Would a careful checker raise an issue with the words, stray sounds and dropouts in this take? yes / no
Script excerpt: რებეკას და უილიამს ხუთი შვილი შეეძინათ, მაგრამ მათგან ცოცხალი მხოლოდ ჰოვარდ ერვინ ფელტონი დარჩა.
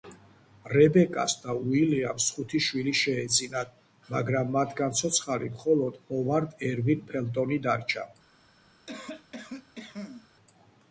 yes